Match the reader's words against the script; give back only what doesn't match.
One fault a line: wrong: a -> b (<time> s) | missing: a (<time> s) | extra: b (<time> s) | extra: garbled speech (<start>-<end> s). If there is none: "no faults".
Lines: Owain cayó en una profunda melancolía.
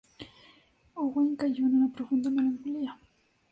no faults